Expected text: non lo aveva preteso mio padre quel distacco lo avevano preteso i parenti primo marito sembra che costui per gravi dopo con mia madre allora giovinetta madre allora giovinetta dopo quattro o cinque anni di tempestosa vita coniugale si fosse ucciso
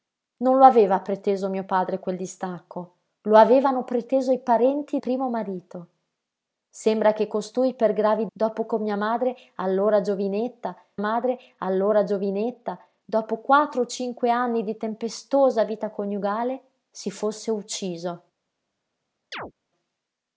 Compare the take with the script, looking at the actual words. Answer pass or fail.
pass